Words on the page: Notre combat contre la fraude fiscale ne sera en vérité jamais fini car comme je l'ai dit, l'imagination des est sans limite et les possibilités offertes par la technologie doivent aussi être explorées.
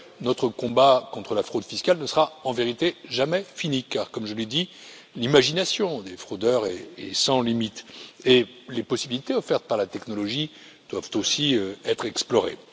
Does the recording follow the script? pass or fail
fail